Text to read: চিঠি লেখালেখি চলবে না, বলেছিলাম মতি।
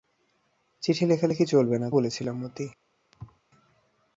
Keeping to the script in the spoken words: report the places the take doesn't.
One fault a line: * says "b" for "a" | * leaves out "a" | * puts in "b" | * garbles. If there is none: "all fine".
all fine